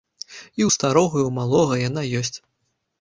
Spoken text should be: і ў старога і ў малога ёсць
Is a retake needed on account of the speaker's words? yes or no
yes